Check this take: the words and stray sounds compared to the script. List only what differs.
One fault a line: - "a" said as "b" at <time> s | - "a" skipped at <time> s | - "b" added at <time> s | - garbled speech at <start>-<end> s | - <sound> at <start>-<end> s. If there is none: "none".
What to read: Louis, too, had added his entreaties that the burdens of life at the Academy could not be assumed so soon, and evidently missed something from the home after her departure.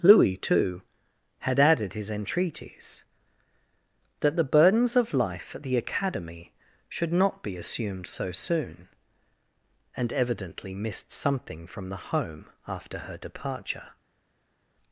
- "could" said as "should" at 6.9 s